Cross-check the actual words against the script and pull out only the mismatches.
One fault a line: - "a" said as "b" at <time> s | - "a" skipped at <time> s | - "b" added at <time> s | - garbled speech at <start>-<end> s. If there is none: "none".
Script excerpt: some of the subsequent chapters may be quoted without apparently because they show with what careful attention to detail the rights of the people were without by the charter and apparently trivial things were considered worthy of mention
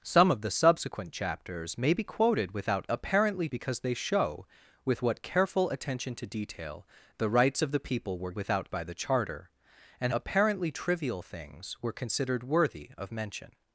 none